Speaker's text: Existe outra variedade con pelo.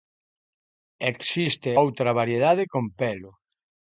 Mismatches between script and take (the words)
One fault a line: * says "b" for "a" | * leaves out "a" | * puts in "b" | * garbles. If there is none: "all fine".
all fine